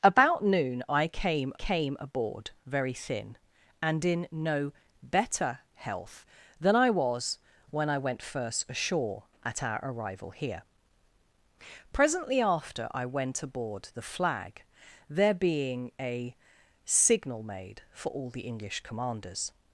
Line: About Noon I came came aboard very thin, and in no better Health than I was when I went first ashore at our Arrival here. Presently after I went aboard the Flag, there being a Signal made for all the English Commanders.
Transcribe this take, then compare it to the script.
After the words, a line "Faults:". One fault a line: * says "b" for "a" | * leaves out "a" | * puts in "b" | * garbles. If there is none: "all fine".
About Noon I came came aboard very thin, and in no better Health than I was when I went first ashore at our Arrival here. Presently after I went aboard the Flag, there being a Signal made for all the English Commanders.
Faults:
all fine